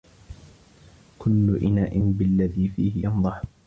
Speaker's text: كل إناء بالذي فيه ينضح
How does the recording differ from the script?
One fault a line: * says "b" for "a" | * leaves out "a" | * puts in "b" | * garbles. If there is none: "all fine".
all fine